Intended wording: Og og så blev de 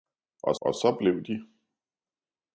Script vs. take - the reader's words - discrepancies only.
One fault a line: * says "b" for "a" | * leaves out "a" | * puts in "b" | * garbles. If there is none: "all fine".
all fine